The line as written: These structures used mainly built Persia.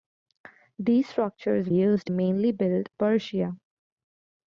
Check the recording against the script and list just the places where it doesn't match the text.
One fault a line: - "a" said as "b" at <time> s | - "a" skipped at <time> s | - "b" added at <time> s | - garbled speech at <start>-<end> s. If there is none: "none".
none